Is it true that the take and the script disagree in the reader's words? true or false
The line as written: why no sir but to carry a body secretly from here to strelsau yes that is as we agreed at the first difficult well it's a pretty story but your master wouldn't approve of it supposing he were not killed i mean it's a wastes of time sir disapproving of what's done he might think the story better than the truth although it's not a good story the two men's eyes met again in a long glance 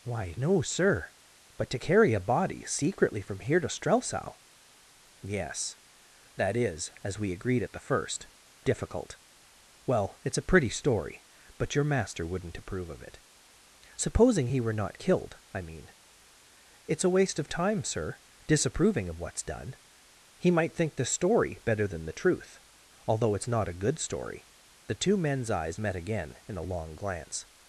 true